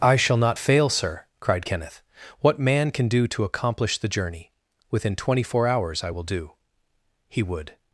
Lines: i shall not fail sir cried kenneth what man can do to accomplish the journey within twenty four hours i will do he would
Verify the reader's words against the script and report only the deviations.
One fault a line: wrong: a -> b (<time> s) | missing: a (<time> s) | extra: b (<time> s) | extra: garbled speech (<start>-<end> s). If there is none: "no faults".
no faults